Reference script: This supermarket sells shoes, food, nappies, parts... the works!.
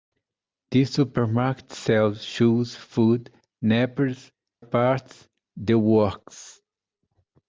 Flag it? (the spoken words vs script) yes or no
no